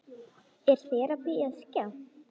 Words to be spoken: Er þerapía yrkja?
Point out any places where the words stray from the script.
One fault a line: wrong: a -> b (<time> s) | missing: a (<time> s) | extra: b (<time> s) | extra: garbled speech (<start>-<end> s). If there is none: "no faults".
no faults